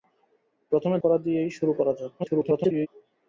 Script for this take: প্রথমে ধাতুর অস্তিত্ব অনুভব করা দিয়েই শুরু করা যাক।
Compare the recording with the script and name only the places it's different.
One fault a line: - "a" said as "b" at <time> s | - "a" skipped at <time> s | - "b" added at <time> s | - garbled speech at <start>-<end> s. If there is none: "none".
- "ধাতুর অস্তিত্ব অনুভব" skipped at 1.0 s
- garbled speech at 2.2-2.9 s